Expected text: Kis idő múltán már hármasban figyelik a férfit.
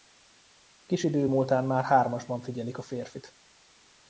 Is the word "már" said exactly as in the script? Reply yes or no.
yes